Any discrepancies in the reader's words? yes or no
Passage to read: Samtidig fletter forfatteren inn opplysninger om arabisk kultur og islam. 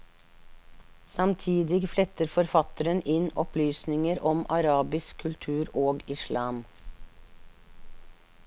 no